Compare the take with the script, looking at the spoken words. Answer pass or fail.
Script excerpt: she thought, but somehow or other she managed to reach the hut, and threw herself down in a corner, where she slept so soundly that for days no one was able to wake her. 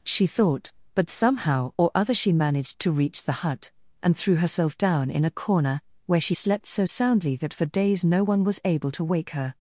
pass